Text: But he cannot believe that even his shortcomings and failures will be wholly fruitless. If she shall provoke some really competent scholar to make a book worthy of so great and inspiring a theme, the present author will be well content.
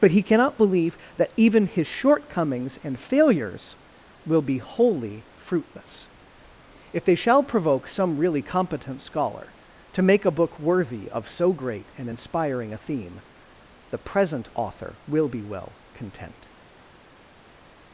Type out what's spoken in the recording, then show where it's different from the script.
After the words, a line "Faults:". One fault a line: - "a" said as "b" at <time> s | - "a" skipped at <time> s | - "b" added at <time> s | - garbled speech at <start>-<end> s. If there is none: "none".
But he cannot believe that even his shortcomings and failures will be wholly fruitless. If they shall provoke some really competent scholar to make a book worthy of so great and inspiring a theme, the present author will be well content.
Faults:
- "she" said as "they" at 7.0 s